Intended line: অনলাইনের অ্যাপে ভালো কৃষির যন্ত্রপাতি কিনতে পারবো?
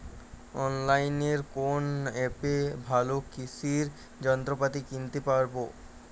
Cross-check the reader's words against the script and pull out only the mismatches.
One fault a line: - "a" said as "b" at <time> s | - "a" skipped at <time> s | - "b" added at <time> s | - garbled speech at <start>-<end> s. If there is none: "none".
- "কোন" added at 1.6 s